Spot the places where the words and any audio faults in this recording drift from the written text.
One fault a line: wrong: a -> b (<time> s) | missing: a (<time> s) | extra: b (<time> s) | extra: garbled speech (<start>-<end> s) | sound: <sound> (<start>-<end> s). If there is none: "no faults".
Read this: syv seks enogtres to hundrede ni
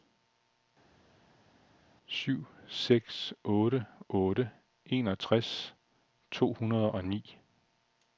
extra: otte otte (3.4 s)
extra: og (6.9 s)